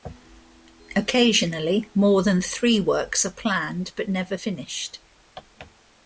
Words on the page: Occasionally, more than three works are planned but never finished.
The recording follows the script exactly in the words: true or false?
true